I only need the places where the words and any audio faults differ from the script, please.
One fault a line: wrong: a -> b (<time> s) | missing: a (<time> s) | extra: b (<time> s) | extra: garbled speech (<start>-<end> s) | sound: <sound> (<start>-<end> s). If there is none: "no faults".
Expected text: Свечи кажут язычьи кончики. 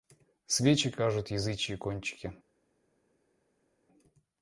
no faults